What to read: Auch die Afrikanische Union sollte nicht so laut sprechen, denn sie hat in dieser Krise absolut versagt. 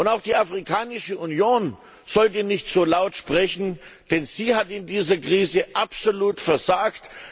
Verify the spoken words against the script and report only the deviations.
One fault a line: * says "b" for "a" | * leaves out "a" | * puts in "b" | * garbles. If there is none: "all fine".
all fine